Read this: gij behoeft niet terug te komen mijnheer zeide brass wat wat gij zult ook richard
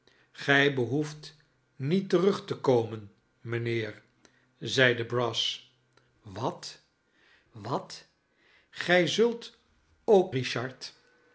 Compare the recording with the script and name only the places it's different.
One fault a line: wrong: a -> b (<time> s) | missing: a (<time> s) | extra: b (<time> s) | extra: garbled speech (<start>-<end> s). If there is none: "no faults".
no faults